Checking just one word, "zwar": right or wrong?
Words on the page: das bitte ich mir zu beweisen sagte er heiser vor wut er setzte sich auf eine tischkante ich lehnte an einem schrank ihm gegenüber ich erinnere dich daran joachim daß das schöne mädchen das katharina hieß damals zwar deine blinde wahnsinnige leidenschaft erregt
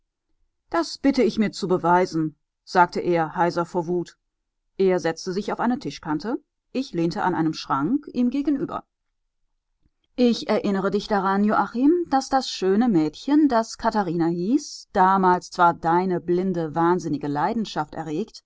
right